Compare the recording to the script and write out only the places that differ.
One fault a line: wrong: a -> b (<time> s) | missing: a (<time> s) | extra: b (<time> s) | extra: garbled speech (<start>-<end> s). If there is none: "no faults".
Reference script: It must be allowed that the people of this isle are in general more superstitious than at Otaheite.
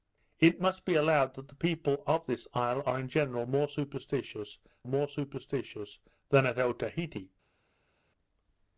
extra: more superstitious (4.8 s)